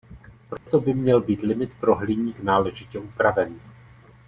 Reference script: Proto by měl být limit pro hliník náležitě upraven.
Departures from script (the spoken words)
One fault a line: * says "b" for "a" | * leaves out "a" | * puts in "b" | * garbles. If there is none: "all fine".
all fine